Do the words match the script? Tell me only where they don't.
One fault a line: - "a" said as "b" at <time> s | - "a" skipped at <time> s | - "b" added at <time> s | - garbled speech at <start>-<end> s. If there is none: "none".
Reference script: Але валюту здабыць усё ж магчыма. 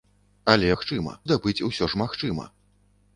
- "валюту" said as "магчыма" at 0.7 s